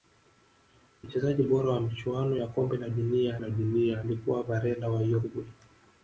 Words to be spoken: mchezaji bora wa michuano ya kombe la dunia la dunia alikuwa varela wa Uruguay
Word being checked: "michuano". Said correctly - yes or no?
yes